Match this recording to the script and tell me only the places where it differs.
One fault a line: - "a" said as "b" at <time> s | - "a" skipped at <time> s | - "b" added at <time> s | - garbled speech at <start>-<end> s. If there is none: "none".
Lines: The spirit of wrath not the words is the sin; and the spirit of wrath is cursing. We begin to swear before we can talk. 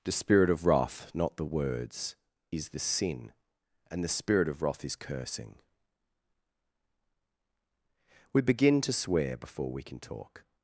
none